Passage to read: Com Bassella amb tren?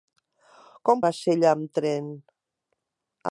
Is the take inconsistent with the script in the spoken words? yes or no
no